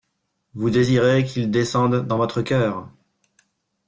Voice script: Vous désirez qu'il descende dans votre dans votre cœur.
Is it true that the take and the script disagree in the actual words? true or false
true